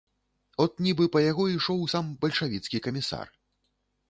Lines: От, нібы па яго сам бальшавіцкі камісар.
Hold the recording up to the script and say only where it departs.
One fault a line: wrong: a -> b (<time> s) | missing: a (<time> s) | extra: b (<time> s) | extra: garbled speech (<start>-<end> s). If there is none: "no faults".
extra: ішоў (1.6 s)